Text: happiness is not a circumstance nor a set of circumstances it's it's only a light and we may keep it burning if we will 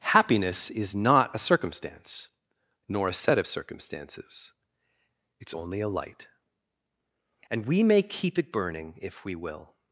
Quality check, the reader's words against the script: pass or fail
fail